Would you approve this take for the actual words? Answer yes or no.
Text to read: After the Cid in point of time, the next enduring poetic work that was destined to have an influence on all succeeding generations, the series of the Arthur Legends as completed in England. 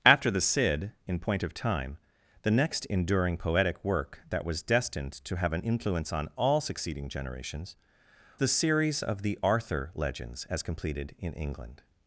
yes